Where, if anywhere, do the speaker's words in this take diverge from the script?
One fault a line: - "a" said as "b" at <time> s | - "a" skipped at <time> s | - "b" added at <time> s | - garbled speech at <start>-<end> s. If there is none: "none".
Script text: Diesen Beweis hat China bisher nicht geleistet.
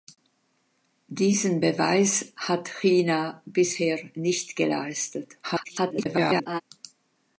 - garbled speech at 5.4-6.6 s